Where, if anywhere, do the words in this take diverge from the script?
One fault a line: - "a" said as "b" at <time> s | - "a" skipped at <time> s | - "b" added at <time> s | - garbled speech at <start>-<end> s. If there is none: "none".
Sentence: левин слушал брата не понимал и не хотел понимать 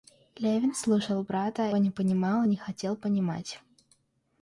none